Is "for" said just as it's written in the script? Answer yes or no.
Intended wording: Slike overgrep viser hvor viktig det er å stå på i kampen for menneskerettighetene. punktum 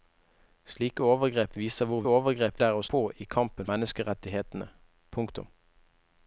no